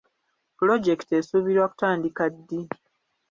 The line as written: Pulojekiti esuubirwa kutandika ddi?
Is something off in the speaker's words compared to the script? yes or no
no